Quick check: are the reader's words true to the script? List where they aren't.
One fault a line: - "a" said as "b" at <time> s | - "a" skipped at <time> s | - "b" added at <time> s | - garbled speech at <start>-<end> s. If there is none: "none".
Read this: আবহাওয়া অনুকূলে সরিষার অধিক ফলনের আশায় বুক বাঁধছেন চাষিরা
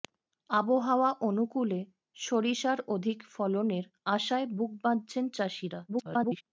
- garbled speech at 5.9-6.4 s